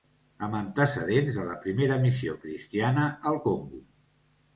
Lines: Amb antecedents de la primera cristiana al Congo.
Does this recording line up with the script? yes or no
no